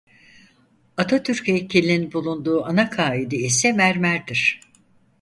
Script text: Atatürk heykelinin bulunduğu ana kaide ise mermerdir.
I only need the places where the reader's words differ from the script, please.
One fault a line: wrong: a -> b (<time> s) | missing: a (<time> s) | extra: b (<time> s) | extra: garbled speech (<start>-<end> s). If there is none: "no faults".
no faults